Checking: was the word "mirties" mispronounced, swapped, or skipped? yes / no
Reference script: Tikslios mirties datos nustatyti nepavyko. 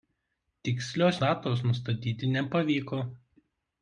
yes